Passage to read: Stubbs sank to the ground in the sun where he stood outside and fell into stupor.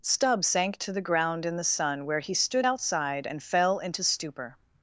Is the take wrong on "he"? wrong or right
right